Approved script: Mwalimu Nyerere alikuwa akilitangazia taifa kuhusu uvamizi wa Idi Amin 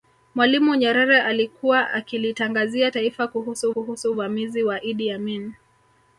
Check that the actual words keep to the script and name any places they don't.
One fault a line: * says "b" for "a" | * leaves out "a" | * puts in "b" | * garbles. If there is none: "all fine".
* puts in "kuhusu"